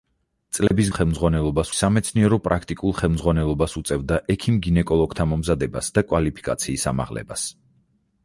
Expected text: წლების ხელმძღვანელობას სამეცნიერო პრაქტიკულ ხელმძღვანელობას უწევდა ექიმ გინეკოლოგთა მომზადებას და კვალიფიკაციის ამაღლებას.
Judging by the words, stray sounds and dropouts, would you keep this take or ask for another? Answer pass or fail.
fail